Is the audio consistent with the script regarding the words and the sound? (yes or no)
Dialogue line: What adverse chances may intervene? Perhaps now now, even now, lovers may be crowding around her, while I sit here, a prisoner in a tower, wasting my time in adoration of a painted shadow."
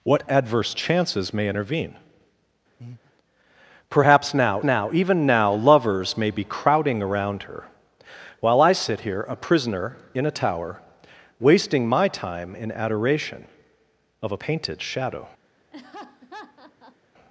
no